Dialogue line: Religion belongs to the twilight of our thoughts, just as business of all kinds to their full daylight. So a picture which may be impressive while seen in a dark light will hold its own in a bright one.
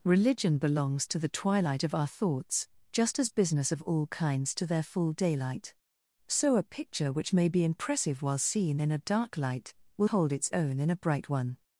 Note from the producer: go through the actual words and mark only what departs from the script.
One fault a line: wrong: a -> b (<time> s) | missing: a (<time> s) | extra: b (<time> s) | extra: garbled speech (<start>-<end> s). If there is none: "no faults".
no faults